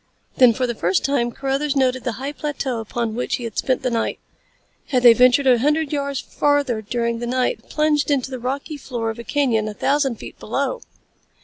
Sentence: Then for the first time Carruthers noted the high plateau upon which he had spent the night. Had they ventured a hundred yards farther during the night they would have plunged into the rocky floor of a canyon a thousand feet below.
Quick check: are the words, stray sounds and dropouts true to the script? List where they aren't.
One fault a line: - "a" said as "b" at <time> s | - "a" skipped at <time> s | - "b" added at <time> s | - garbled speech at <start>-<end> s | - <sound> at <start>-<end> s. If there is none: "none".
- "they would" skipped at 7.6 s